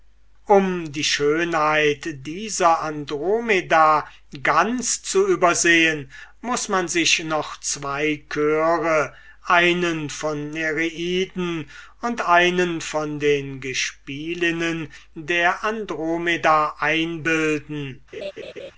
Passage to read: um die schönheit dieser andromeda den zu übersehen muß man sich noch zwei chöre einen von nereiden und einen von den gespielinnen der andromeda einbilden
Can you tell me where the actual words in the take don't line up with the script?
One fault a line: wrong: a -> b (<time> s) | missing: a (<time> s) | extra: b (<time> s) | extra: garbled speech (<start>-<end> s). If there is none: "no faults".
wrong: den -> ganz (4.4 s)